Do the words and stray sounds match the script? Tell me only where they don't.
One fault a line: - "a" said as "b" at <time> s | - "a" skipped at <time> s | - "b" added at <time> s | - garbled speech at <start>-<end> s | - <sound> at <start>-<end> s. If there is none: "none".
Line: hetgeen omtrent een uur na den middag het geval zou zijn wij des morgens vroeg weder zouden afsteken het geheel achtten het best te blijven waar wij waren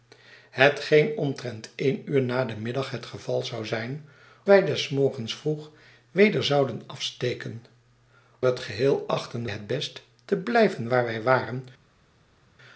none